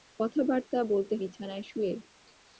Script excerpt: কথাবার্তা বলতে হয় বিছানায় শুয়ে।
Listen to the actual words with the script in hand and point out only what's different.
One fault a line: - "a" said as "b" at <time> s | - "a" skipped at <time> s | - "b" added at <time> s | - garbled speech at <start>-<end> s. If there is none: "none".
- "হয়" skipped at 1.1 s